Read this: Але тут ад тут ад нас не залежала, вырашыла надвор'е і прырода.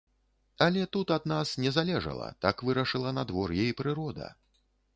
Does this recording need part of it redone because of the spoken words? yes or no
yes